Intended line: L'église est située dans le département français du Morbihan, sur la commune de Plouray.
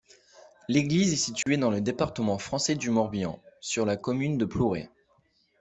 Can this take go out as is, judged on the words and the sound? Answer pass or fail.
fail